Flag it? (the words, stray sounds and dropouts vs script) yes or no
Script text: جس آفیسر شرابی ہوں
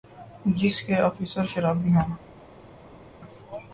yes